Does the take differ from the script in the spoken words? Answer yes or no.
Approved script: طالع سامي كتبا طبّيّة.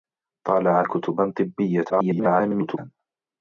yes